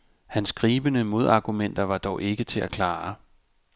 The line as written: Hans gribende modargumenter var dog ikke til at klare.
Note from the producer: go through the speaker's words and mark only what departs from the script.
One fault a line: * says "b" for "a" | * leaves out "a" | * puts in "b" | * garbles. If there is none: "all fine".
all fine